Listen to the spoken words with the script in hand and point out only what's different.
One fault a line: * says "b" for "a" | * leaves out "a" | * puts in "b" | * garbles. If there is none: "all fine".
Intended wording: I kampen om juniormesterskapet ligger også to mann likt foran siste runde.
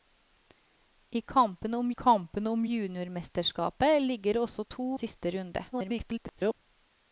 * puts in "kampen om"
* leaves out "mann likt foran"
* garbles